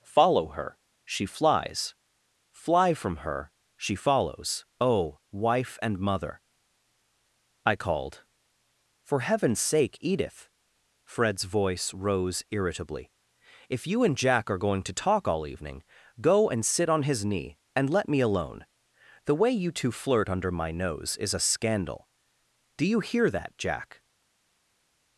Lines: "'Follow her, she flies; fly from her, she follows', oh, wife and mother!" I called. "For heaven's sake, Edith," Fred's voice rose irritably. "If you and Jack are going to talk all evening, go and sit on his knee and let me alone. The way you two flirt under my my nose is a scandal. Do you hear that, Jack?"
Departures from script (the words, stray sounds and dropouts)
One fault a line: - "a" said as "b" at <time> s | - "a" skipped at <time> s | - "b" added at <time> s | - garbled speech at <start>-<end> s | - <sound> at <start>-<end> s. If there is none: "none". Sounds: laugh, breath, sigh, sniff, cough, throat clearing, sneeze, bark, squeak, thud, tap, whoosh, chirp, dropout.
- "my" skipped at 20.7 s